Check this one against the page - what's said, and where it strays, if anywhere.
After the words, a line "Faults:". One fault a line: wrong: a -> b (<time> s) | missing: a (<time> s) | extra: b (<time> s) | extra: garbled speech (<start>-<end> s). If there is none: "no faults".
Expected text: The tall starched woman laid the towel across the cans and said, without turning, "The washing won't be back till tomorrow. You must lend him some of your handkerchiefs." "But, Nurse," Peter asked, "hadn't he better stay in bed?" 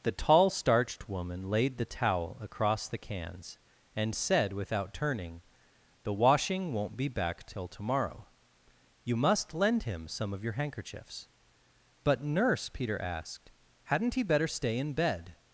The tall starched woman laid the towel across the cans and said, without turning, "The washing won't be back till tomorrow. You must lend him some of your handkerchiefs." "But, Nurse," Peter asked, "hadn't he better stay in bed?"
Faults:
no faults